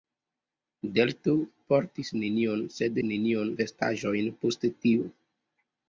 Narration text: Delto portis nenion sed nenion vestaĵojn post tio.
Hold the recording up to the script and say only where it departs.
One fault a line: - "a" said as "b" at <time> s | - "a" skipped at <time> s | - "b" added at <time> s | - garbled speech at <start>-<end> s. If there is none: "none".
none